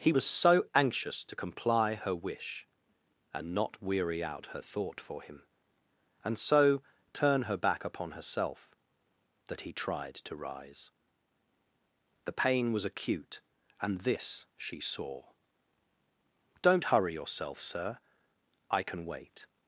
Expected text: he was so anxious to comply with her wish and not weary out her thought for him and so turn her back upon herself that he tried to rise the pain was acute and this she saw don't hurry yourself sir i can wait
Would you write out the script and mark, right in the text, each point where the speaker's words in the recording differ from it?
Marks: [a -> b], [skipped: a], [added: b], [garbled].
he was so anxious to comply [skipped: with] her wish and not weary out her thought for him and so turn her back upon herself that he tried to rise the pain was acute and this she saw don't hurry yourself sir i can wait